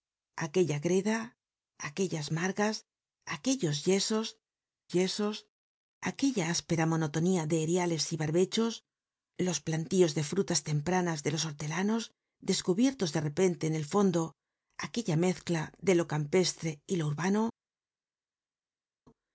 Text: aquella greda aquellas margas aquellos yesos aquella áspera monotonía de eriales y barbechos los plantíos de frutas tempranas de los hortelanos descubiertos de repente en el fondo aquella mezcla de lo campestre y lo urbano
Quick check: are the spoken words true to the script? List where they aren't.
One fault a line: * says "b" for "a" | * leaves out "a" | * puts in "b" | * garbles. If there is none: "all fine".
* puts in "yesos"